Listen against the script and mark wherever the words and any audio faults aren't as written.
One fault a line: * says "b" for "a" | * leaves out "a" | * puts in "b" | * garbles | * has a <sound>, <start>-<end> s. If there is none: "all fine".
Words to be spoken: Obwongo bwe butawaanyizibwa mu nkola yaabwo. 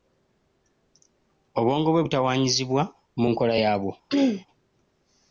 * has a throat clearing, 4.1-4.5 s